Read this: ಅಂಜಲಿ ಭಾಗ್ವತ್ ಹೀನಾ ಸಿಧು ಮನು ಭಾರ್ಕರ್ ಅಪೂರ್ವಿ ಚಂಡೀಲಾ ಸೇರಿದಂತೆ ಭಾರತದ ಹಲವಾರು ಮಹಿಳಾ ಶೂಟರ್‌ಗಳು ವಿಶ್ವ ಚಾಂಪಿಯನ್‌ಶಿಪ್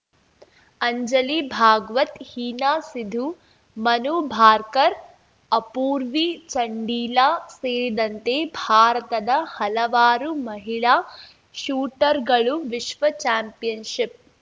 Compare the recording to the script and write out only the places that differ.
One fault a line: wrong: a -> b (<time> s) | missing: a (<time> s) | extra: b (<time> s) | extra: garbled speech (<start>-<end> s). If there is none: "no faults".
no faults